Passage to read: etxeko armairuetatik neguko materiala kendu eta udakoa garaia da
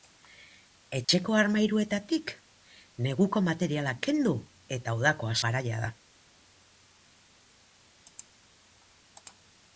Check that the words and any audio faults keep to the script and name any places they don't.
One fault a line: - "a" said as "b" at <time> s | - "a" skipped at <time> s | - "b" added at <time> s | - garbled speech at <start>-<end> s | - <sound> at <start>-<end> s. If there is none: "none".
- dropout at 1.0-1.1 s